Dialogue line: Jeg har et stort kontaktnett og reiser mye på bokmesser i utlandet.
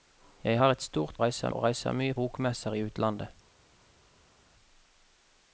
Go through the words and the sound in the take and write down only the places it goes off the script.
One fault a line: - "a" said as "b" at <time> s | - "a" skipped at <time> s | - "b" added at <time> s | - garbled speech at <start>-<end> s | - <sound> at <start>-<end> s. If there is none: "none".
- "kontaktnett" said as "reiser" at 1.2 s
- "på" skipped at 2.2 s